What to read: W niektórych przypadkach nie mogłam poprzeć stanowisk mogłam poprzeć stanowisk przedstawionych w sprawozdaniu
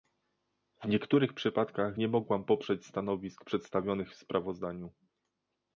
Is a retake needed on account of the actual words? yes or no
yes